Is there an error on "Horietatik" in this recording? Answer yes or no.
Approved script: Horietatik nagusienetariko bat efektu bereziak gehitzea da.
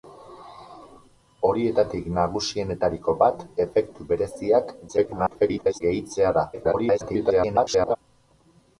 no